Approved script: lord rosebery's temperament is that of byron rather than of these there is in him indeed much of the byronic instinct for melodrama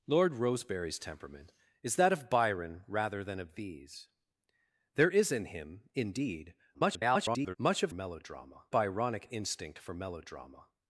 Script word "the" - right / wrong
wrong